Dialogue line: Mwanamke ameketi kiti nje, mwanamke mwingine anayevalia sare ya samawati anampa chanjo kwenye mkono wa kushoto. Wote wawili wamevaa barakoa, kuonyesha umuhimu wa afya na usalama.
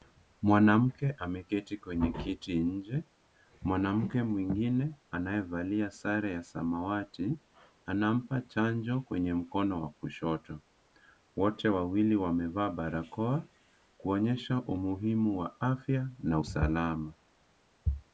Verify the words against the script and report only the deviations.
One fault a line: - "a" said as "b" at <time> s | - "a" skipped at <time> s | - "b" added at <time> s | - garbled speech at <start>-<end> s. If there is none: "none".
- "kwenye" added at 1.8 s